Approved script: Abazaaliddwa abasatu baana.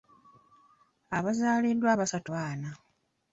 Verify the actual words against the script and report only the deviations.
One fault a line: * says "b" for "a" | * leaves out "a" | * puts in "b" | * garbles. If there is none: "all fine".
all fine